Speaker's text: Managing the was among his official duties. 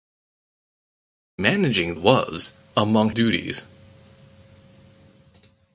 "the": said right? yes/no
no